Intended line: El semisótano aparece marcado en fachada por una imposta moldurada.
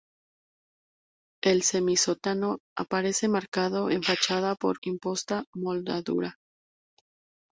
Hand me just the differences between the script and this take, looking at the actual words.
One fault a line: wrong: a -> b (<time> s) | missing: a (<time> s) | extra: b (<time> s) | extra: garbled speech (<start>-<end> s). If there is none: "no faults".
missing: una (4.8 s)